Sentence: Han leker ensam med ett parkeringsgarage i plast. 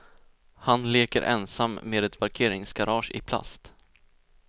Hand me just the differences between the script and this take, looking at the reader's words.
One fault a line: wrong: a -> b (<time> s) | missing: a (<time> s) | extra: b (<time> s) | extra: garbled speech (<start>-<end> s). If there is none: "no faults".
no faults